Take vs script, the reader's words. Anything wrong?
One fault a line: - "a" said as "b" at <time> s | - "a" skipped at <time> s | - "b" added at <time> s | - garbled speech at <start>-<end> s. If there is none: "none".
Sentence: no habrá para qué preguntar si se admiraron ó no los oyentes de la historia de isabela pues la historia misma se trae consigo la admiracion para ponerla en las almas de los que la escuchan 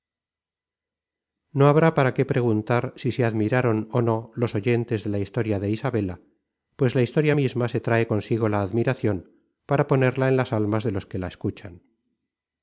none